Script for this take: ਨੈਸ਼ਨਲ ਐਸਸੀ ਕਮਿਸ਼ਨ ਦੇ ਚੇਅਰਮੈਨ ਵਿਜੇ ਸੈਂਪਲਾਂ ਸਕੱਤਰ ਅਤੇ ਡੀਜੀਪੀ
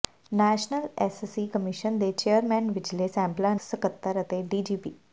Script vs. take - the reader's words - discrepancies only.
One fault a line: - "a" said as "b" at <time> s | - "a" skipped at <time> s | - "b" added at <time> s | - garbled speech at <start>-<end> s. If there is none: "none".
none